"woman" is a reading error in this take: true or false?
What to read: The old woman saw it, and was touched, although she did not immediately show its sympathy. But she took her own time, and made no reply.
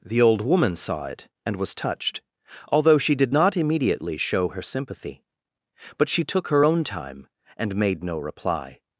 false